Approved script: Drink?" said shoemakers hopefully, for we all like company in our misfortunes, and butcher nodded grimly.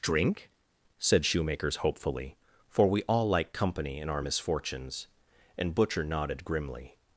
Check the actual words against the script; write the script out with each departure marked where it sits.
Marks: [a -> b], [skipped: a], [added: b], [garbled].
Drink?" said shoemakers hopefully, for we all like company in our misfortunes, and butcher nodded grimly.